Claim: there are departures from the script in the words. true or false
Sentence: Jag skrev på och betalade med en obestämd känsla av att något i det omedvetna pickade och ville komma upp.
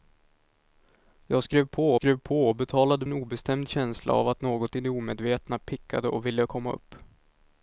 true